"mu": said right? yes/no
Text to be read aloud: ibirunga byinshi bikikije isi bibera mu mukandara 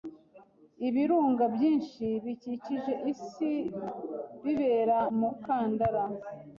no